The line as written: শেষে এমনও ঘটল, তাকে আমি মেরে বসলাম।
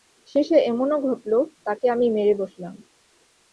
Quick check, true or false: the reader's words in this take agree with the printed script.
true